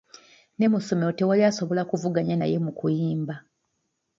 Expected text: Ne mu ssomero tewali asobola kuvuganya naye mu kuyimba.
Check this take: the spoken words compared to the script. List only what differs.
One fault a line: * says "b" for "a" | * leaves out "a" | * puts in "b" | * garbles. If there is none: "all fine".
all fine